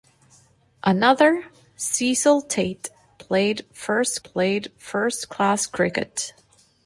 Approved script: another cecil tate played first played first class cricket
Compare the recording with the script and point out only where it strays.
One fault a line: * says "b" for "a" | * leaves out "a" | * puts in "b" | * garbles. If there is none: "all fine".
all fine